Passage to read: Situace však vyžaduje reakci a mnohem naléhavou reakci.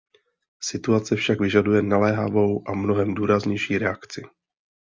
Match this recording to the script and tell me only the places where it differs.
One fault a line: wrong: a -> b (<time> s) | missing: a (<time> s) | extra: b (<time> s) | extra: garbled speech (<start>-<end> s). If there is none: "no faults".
wrong: reakci -> naléhavou (1.8 s)
wrong: naléhavou -> důraznější (3.1 s)